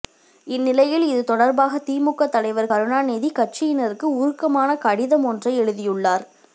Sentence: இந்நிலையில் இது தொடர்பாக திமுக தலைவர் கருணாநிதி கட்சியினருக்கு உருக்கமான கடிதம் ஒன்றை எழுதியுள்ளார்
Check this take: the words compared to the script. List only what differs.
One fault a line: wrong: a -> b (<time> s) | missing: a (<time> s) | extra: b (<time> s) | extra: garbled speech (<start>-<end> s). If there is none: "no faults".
no faults